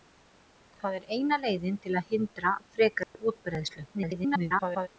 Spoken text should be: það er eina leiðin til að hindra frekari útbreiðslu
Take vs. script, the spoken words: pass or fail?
fail